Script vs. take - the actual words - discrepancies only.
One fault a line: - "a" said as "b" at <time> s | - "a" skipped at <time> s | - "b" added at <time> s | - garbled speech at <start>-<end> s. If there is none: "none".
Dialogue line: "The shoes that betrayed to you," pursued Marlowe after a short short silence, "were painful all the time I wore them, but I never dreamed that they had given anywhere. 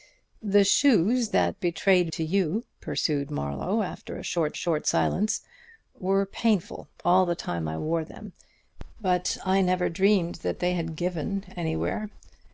none